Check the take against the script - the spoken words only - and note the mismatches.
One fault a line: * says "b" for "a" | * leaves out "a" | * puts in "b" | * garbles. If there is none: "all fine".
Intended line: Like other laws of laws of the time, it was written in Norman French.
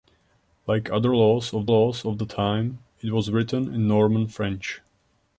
all fine